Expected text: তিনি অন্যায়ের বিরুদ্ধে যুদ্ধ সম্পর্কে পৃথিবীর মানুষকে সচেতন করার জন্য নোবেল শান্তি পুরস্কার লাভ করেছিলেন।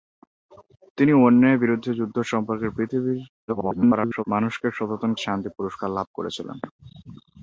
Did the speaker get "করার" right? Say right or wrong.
wrong